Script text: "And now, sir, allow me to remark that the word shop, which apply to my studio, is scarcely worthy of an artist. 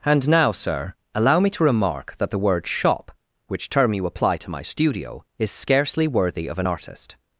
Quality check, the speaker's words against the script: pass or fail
fail